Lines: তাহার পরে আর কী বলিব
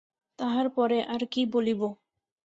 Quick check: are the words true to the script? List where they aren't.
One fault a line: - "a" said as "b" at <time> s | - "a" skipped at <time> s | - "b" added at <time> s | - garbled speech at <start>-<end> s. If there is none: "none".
none